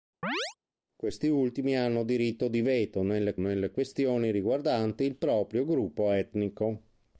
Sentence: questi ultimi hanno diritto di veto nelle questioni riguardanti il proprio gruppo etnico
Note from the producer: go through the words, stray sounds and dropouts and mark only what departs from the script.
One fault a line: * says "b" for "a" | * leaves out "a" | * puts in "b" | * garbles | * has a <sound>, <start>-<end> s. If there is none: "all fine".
* has a chirp, 0.2-0.5 s
* puts in "nelle"